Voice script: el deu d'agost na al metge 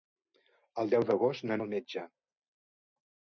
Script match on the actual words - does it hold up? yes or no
yes